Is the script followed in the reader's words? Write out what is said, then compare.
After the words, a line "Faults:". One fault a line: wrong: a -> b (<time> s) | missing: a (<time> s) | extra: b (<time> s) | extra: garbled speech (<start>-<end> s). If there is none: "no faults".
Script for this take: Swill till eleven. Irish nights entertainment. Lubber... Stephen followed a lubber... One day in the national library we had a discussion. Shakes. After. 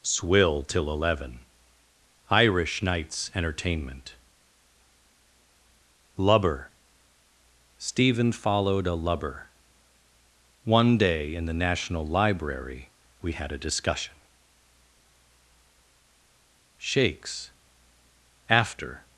Swill till eleven. Irish nights entertainment. Lubber... Stephen followed a lubber... One day in the national library we had a discussion. Shakes. After.
Faults:
no faults